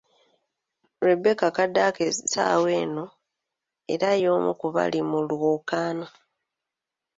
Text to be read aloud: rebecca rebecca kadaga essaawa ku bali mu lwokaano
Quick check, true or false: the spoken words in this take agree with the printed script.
false